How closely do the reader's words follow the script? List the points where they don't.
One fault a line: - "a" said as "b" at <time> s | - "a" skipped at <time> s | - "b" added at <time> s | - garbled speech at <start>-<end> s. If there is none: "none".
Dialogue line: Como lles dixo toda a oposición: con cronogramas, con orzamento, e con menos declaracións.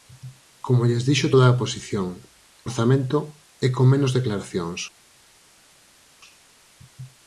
- "con cronogramas con" skipped at 2.1 s